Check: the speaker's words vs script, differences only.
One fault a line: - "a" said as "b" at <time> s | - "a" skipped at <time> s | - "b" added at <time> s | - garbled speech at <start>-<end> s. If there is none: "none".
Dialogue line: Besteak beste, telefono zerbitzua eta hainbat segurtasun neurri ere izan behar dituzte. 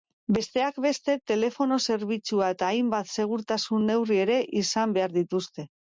none